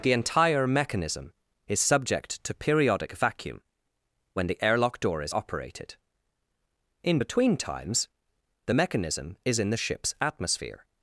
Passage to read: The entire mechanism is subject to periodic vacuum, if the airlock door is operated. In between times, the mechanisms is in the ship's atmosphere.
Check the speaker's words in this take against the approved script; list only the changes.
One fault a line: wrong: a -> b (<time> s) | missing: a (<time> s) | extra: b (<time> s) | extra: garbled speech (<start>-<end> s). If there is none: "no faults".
wrong: if -> when (4.3 s)
wrong: mechanisms -> mechanism (8.7 s)